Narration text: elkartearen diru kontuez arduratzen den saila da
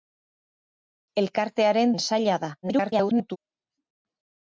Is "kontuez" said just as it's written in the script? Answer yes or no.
no